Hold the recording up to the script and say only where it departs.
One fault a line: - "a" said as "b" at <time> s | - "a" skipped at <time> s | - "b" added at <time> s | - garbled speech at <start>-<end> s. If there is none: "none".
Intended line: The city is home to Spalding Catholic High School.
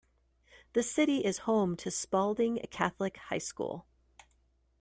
none